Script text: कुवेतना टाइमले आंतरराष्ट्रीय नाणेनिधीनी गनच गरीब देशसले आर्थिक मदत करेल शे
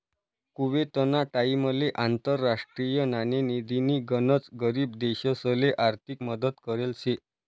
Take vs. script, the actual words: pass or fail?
pass